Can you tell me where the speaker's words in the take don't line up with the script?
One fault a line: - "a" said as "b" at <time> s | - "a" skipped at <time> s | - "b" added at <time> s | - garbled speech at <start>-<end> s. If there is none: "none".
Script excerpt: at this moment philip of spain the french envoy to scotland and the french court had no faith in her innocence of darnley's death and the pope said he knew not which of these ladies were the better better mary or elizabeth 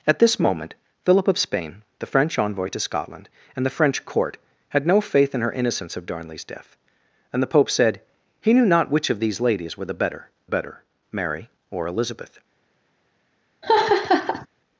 none